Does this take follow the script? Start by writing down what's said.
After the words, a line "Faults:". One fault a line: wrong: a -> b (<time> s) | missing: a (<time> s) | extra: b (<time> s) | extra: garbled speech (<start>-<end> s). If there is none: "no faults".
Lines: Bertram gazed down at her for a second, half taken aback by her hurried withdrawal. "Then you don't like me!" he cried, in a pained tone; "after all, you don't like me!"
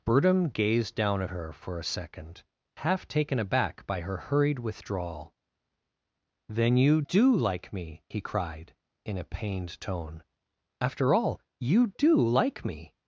Bertram gazed down at her for a second, half taken aback by her hurried withdrawal. "Then you do like me!" he cried, in a pained tone; "after all, you do like me!"
Faults:
wrong: don't -> do (7.0 s)
wrong: don't -> do (12.0 s)